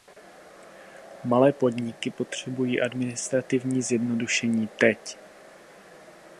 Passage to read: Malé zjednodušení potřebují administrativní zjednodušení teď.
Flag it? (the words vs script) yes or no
yes